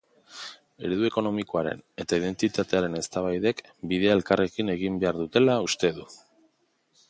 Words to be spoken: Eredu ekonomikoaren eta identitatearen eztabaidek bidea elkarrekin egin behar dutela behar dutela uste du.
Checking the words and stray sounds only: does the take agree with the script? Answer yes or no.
no